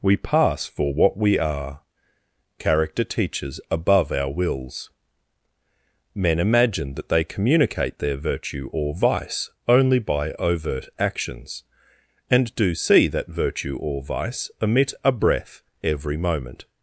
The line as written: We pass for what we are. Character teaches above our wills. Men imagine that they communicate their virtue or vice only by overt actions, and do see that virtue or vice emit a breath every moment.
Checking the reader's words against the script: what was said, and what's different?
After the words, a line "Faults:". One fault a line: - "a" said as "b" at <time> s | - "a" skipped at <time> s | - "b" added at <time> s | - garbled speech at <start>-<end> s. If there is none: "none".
We pass for what we are. Character teaches above our wills. Men imagine that they communicate their virtue or vice only by overt actions, and do see that virtue or vice emit a breath every moment.
Faults:
none